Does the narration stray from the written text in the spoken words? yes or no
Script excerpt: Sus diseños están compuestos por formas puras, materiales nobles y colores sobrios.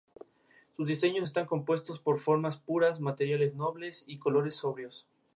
no